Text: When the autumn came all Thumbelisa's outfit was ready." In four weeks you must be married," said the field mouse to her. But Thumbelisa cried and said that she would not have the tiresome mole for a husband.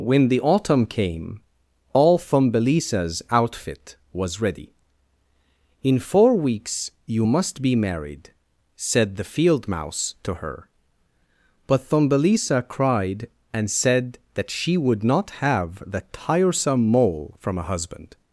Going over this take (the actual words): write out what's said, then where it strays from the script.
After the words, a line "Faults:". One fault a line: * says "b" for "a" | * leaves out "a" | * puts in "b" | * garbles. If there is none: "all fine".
When the autumn came all Thumbelisa's outfit was ready." In four weeks you must be married," said the field mouse to her. But Thumbelisa cried and said that she would not have the tiresome mole from a husband.
Faults:
* says "from" for "for"